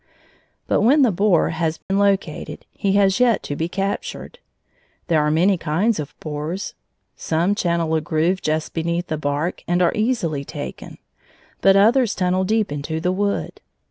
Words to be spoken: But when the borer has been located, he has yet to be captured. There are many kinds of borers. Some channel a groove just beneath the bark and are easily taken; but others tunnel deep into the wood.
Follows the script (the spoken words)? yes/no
yes